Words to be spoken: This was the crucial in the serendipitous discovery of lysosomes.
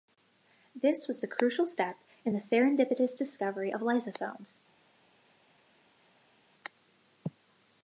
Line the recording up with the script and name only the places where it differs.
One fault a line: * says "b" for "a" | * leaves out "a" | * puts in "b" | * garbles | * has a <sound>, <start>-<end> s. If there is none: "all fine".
* puts in "step"